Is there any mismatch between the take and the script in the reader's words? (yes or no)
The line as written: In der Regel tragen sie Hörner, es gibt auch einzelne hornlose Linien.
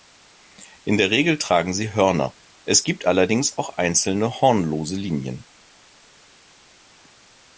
yes